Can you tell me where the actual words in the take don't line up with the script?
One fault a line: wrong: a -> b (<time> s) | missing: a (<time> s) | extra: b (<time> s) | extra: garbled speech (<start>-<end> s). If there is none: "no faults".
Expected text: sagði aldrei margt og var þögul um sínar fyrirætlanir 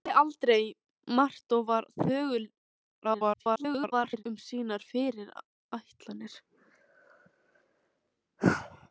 extra: garbled speech (3.0-4.2 s)